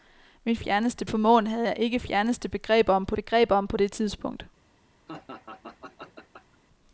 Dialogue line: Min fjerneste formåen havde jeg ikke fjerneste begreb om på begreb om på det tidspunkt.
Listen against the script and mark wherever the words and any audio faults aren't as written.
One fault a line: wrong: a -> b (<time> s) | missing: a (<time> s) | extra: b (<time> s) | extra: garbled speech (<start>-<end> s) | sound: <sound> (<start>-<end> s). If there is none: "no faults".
sound: laugh (5.1-6.6 s)